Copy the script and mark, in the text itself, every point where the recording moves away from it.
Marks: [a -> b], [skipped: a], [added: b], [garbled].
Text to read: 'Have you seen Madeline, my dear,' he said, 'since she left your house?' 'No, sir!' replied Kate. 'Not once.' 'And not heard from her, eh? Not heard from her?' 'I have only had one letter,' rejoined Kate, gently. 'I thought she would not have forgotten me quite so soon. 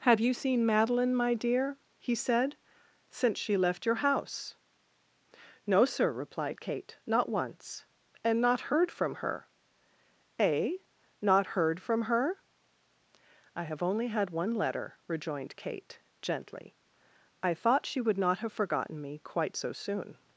'Have you seen Madeline, my dear,' he said, 'since she left your house?' 'No, sir!' replied Kate. 'Not once.' 'And not heard from her, eh? Not heard from her?' 'I have only had one letter,' rejoined Kate, gently. 'I thought she would not have forgotten me quite so soon.